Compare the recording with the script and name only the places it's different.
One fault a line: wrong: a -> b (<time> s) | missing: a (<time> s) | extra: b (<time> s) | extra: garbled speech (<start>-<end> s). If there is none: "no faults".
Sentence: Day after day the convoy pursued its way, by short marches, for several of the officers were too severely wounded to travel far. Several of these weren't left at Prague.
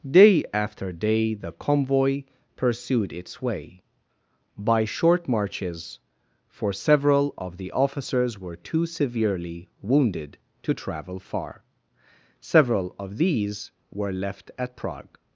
wrong: weren't -> were (13.9 s)